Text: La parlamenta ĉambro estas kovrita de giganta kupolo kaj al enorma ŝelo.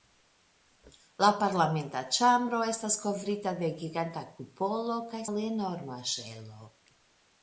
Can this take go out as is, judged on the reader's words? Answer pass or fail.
pass